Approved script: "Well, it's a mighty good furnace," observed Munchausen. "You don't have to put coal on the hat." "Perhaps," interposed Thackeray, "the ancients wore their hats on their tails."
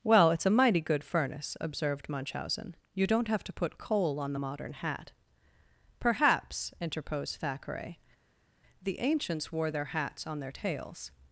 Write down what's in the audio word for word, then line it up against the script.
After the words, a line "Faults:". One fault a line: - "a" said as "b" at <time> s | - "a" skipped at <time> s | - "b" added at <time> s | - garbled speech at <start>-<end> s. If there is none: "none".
"Well, it's a mighty good furnace," observed Munchausen. "You don't have to put coal on the modern hat." "Perhaps," interposed Thackeray, "the ancients wore their hats on their tails."
Faults:
- "modern" added at 4.3 s